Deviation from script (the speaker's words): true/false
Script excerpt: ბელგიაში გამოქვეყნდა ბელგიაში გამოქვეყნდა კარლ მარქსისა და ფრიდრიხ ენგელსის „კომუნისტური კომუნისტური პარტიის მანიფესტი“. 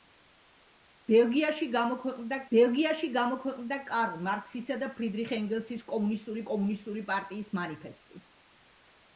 false